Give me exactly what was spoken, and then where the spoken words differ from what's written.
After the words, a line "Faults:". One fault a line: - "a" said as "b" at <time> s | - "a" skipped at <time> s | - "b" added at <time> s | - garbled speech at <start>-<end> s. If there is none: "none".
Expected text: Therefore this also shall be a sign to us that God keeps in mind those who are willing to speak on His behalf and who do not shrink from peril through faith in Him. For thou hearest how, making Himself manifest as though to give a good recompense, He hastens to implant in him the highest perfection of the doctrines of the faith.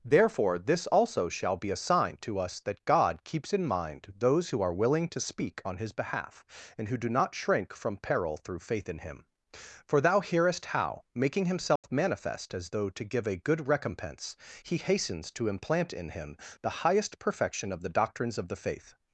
Therefore this also shall be a sign to us that God keeps in mind those who are willing to speak on His behalf and who do not shrink from peril through faith in Him. For thou hearest how, making Himself manifest as though to give a good recompense, He hastens to implant in him the highest perfection of the doctrines of the faith.
Faults:
none